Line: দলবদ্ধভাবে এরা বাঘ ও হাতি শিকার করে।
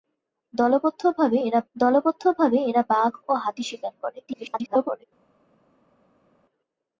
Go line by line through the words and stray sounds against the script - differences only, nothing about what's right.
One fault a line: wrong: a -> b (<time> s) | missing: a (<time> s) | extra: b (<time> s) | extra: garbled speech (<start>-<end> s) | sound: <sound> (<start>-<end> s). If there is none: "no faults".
extra: দলবদ্ধভাবে এরা (1.8 s)
extra: garbled speech (4.3-5.0 s)